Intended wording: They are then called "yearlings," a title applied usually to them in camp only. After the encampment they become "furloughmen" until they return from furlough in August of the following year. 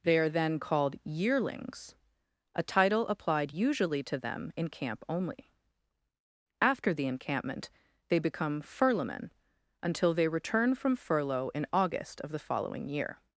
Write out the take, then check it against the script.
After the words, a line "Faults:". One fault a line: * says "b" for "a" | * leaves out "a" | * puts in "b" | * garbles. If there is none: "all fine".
They are then called "yearlings," a title applied usually to them in camp only. After the encampment they become "furloughmen" until they return from furlough in August of the following year.
Faults:
all fine